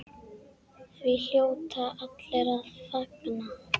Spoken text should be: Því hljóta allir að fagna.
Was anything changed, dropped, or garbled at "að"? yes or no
no